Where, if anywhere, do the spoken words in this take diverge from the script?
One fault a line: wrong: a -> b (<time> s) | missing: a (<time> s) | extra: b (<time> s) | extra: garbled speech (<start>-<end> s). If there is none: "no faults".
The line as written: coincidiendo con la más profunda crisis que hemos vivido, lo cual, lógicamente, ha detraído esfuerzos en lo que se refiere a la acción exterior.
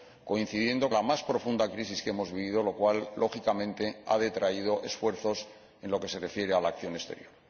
missing: con (0.9 s)